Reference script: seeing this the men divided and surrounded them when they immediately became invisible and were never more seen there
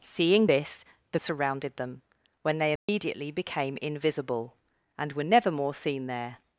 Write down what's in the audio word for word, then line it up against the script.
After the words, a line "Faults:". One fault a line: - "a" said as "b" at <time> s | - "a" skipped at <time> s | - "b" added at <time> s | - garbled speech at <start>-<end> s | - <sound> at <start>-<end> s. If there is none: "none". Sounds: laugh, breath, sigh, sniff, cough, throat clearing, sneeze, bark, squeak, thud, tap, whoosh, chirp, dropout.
seeing this the surrounded them when they immediately became invisible and were never more seen there
Faults:
- "men divided and" skipped at 1.2 s
- dropout at 2.8-2.9 s